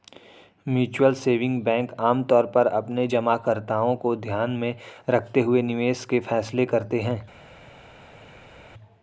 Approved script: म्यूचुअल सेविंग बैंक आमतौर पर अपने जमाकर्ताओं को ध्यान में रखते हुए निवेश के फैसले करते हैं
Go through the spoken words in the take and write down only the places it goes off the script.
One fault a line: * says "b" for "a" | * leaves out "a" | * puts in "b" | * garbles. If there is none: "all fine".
all fine